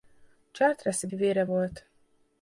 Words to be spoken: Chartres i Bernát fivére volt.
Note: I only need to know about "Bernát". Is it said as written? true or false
false